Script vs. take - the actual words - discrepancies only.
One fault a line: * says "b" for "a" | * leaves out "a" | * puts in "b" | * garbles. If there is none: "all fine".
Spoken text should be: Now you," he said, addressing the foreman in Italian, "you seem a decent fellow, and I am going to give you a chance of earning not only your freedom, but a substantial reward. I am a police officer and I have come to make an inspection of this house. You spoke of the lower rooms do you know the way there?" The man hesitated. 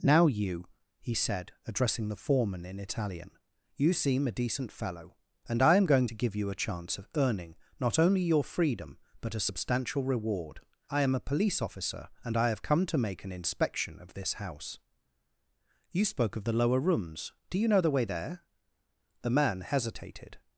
all fine